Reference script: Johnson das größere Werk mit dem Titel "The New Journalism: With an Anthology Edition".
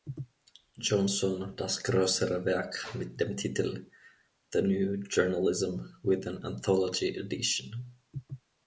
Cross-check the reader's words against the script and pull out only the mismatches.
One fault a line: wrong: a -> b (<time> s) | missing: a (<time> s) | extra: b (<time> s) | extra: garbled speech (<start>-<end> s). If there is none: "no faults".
no faults